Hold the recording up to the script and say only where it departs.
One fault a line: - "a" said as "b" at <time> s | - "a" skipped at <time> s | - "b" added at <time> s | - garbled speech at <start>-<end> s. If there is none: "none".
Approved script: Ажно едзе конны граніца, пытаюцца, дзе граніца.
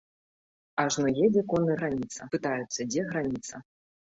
none